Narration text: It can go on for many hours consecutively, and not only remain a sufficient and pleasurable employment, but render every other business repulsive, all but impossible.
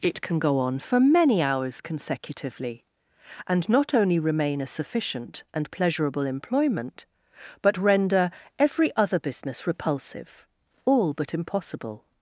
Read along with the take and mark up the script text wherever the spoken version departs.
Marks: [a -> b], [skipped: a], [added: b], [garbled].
It can go on for many hours consecutively, and not only remain a sufficient and pleasurable employment, but render every other business repulsive, all but impossible.